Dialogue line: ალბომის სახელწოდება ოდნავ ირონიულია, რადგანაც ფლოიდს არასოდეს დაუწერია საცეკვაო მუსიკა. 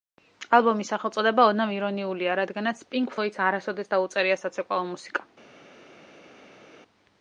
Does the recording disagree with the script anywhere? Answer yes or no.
yes